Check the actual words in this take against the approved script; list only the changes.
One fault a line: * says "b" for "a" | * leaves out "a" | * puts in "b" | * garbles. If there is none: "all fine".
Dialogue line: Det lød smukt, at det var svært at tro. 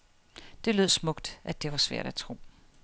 all fine